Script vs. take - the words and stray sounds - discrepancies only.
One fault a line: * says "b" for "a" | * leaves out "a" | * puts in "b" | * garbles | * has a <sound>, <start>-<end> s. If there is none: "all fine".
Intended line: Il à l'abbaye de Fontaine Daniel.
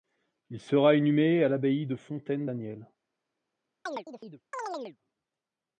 * puts in "sera inhumé"
* has a chirp, 3.9-5.0 s